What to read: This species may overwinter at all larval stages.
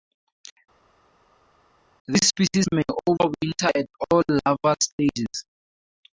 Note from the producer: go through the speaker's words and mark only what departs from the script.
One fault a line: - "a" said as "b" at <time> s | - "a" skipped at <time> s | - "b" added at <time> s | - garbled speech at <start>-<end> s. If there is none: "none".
none